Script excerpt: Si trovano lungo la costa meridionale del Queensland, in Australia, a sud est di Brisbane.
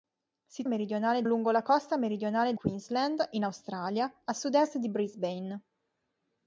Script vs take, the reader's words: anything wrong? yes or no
yes